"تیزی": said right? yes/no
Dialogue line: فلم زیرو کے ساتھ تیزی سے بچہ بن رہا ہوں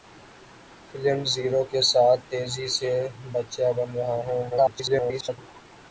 yes